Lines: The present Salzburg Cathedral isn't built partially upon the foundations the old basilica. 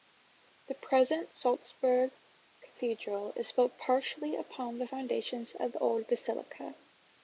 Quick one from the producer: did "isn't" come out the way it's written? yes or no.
no